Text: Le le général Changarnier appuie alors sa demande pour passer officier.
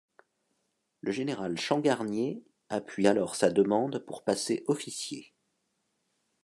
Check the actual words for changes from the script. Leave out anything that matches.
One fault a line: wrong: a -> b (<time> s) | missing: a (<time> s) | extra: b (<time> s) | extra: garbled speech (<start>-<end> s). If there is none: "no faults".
missing: le (1.1 s)